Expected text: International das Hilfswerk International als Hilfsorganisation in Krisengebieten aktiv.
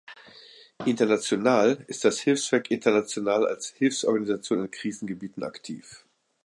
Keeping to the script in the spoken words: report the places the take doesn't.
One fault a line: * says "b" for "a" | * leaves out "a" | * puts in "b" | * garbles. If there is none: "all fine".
* puts in "ist"